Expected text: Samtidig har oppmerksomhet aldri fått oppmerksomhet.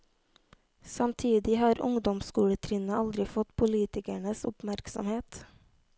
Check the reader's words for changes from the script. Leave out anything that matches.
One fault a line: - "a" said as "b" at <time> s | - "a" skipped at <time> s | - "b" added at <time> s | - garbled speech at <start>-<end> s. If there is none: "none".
- "oppmerksomhet" said as "ungdomsskoletrinnet" at 1.8 s
- "politikernes" added at 3.5 s